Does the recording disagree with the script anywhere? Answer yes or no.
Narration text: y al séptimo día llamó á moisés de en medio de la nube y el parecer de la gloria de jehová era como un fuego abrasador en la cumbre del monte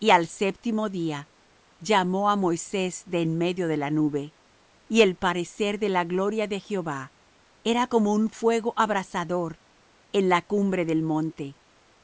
no